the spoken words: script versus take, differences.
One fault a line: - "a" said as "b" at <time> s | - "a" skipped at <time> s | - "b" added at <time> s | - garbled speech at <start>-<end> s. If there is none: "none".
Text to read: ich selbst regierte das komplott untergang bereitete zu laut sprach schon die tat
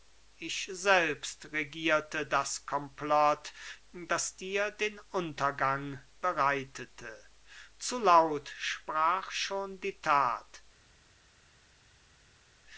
- "das dir den" added at 3.9 s